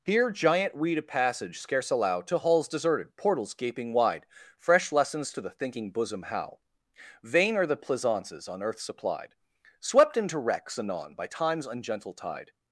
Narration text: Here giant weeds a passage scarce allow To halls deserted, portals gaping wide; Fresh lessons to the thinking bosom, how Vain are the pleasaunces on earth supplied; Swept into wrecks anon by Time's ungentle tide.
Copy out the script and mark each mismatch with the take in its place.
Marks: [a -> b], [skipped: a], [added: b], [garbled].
Here giant [weeds -> weed] a passage scarce allow To halls deserted, portals gaping wide; Fresh lessons to the thinking bosom, how Vain are the pleasaunces on earth supplied; Swept into wrecks anon by Time's ungentle tide.